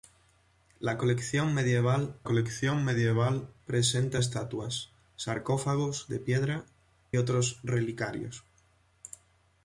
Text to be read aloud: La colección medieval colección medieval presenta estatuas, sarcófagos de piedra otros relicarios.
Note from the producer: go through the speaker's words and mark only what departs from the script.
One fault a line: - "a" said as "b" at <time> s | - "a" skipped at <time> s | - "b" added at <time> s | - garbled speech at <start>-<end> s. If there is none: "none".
none